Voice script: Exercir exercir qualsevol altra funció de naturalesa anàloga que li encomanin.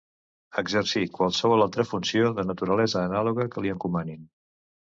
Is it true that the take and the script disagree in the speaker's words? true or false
true